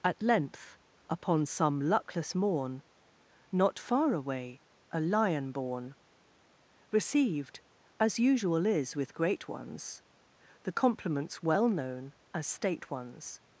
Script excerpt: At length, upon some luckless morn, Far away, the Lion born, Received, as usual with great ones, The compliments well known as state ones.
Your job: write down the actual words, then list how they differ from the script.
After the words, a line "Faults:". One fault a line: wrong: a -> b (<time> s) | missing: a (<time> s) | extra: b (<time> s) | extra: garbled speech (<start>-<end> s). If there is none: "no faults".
At length, upon some luckless morn, Not far away, a Lion born, Received, as usual is with great ones, The compliments well known as state ones.
Faults:
extra: Not (3.5 s)
wrong: the -> a (4.9 s)
extra: is (8.7 s)